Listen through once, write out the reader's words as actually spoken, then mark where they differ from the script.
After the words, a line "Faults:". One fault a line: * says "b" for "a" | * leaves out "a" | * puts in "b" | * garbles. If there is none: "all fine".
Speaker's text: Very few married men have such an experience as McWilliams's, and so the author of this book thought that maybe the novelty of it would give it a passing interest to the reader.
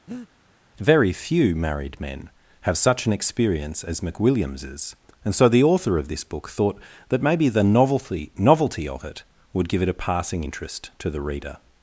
Very few married men have such an experience as McWilliams's, and so the author of this book thought that maybe the novelty novelty of it would give it a passing interest to the reader.
Faults:
* puts in "novelty"